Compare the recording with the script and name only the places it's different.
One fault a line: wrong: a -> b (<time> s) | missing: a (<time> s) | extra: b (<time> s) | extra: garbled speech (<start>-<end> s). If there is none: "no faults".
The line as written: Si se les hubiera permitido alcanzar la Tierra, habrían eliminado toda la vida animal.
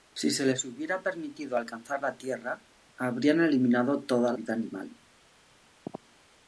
missing: la (4.3 s)